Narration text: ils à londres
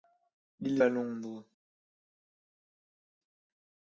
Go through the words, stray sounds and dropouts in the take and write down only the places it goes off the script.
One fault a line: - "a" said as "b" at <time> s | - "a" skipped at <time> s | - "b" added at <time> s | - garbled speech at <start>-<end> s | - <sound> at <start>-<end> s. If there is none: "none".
none